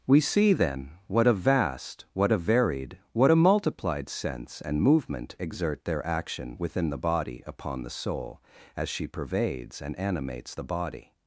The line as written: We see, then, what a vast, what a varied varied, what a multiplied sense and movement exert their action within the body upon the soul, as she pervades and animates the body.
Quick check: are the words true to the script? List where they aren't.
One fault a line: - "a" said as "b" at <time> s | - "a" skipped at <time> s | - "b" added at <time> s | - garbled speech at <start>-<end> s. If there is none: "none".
- "varied" skipped at 3.0 s